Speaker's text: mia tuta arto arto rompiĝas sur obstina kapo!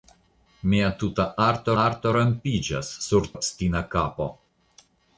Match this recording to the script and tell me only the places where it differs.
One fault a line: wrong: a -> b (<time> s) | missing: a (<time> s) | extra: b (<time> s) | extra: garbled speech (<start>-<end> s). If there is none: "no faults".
no faults